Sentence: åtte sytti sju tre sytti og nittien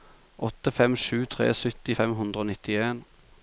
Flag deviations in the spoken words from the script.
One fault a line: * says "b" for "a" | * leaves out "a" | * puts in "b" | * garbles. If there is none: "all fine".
* says "fem" for "sytti"
* puts in "fem hundre"